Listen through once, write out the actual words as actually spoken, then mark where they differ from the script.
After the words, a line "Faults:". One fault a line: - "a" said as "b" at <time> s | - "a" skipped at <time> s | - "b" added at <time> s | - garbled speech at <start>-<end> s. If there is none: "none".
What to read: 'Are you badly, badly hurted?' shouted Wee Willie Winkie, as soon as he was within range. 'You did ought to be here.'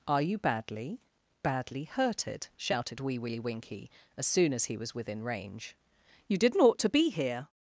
'Are you badly, badly hurted?' shouted Wee Willie Winkie, as soon as he was within range. 'You didn't ought to be here.'
Faults:
- "did" said as "didn't" at 6.4 s